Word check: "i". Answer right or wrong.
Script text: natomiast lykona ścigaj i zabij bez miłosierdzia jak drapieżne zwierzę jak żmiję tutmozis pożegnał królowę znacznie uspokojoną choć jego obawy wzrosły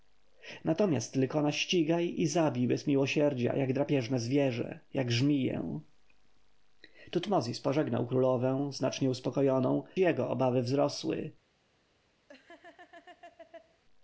right